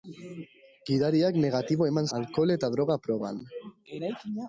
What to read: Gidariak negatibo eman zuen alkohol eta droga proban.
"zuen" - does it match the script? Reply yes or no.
no